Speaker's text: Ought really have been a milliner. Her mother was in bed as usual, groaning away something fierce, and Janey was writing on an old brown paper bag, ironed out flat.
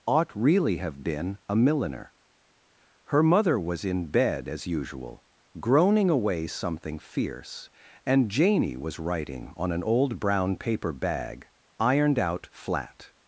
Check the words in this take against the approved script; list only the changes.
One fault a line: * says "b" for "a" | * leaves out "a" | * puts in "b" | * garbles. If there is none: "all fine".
all fine